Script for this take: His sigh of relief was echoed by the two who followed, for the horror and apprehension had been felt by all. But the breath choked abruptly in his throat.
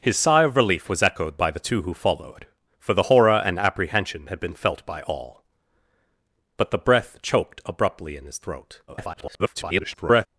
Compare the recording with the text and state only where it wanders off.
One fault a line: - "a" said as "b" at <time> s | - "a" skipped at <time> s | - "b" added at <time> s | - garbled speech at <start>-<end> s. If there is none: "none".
- garbled speech at 8.9-10.3 s